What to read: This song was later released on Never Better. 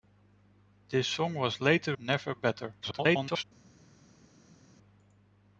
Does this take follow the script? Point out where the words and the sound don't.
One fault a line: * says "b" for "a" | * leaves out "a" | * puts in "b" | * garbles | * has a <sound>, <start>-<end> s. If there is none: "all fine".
* leaves out "released on"
* garbles